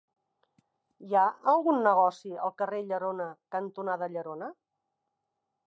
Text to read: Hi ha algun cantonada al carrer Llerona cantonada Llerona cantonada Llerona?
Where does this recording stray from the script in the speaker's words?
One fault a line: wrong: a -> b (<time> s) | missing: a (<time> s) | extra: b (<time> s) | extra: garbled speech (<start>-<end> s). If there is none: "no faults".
wrong: cantonada -> negoci (1.9 s)
missing: cantonada Llerona (4.5 s)